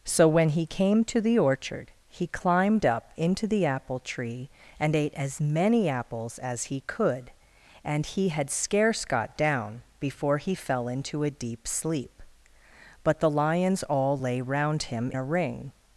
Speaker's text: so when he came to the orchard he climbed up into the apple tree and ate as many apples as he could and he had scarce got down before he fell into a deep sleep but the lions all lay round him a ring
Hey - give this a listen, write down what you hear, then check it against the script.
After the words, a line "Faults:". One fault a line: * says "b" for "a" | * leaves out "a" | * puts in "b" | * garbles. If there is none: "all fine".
so when he came to the orchard he climbed up into the apple tree and ate as many apples as he could and he had scarce got down before he fell into a deep sleep but the lions all lay round him a ring
Faults:
all fine